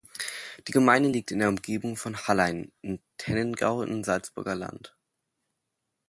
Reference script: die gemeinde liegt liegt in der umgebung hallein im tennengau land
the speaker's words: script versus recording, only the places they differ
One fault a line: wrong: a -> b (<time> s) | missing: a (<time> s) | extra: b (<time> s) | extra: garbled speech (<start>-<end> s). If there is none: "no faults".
missing: liegt (1.3 s)
extra: von (2.0 s)
extra: im salzburger (3.8 s)